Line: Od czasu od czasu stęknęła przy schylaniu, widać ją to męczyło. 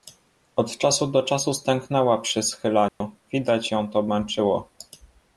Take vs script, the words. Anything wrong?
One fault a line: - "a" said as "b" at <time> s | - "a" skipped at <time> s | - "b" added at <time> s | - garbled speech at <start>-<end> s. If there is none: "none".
- "od" said as "do" at 1.1 s